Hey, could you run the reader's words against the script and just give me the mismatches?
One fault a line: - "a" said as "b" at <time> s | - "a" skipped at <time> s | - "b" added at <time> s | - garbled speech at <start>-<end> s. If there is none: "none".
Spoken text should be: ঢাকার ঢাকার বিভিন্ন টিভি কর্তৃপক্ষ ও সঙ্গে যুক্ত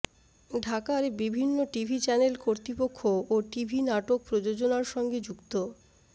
- "ঢাকার" skipped at 1.0 s
- "চ্যানেল" added at 2.0 s
- "টিভি নাটক প্রযোজনার" added at 3.5 s